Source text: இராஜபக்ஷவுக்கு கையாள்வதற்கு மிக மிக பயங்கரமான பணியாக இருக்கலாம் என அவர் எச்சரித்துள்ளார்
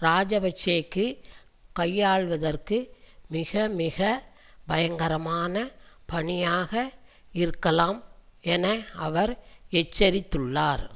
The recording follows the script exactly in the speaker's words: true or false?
true